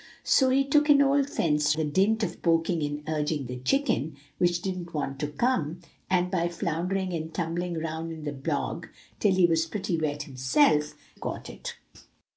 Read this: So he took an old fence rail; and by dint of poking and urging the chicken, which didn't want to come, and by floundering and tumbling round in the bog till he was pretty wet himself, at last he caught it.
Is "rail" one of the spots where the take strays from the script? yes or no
yes